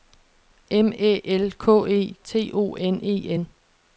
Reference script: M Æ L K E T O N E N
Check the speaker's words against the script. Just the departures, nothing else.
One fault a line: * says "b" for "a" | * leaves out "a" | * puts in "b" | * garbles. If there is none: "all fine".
all fine